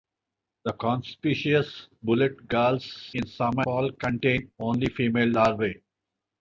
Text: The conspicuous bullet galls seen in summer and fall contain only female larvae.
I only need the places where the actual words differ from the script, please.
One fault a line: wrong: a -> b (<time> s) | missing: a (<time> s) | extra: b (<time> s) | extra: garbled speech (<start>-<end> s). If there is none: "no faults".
missing: seen (2.8 s)
missing: and (3.6 s)